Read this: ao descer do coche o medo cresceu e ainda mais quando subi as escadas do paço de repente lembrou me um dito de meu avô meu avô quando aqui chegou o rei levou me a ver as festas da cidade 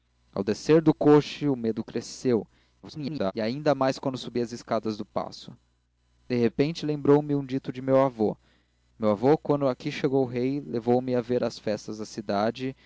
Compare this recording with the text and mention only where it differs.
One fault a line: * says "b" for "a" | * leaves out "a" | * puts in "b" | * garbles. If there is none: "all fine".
* garbles